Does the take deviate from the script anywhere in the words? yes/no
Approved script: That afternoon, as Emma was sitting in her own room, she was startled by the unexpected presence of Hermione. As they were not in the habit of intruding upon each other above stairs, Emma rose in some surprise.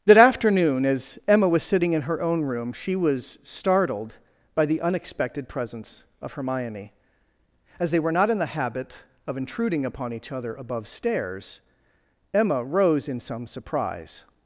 no